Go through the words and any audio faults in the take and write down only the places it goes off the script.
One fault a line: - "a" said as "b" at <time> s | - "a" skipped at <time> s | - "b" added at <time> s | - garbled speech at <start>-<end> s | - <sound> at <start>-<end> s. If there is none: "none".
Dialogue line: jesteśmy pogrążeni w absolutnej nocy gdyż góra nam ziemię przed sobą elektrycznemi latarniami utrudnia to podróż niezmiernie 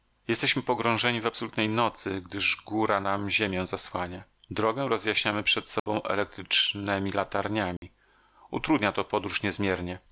- "zasłania drogę rozjaśniamy" added at 3.7 s
- dropout at 5.8-5.9 s
- dropout at 7.8-7.8 s